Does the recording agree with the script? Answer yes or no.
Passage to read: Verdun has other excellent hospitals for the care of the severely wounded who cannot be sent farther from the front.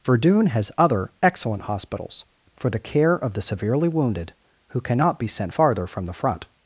yes